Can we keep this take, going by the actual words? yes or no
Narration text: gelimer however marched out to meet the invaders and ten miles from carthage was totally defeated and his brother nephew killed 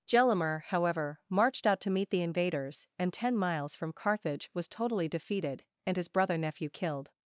yes